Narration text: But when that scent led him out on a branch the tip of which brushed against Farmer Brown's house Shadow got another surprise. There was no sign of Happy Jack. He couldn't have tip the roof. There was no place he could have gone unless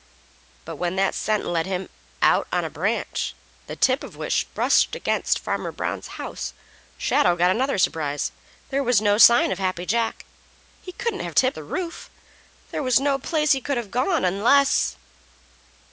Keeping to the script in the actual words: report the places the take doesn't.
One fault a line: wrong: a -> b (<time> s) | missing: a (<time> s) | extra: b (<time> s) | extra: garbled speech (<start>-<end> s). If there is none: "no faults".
no faults